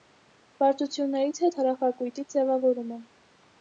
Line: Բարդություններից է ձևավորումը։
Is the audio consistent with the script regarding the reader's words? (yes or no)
no